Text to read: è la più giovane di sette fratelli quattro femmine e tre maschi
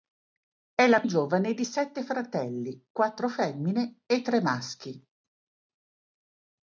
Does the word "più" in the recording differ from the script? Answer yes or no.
yes